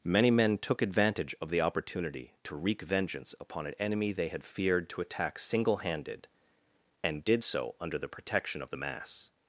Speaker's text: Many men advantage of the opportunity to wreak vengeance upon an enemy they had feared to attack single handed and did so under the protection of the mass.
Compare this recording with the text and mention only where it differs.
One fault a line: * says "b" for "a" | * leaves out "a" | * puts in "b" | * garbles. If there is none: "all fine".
* puts in "took"